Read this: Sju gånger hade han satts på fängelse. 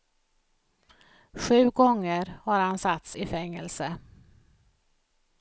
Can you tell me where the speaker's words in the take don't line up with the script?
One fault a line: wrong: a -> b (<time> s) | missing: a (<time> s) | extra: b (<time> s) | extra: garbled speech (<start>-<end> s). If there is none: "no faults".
wrong: hade -> har (2.4 s)
wrong: på -> i (3.1 s)